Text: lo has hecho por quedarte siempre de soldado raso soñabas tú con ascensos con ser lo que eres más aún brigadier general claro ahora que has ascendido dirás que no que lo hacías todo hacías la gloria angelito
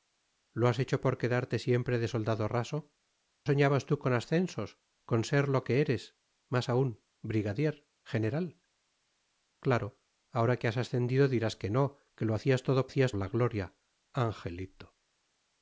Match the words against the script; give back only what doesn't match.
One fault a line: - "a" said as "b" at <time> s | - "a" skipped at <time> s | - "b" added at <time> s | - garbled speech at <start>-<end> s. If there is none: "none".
none